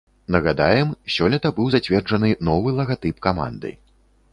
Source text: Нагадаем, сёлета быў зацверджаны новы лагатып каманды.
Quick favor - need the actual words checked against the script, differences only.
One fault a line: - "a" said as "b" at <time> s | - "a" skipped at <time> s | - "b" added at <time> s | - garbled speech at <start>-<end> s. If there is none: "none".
none